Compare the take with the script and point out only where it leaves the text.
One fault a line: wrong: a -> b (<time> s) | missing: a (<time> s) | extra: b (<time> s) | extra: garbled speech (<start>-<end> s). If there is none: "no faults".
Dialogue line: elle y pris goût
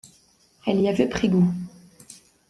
extra: avait (0.9 s)